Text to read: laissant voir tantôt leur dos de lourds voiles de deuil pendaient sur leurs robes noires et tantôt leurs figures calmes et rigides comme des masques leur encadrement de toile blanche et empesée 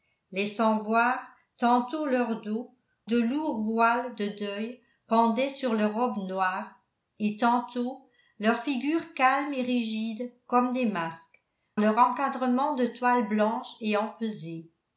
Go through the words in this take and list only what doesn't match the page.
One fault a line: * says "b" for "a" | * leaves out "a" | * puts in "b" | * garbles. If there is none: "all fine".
all fine